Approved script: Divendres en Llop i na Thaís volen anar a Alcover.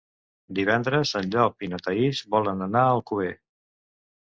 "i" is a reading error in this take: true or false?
false